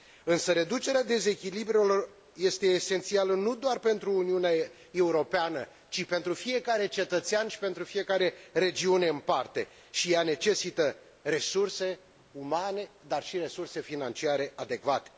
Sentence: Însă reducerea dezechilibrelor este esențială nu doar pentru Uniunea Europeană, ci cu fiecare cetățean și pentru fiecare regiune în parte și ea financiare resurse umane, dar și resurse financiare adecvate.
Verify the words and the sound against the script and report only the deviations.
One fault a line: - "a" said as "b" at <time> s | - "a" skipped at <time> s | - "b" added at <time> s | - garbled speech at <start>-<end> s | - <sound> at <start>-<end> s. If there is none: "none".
- "cu" said as "pentru" at 6.0 s
- "financiare" said as "necesită" at 10.2 s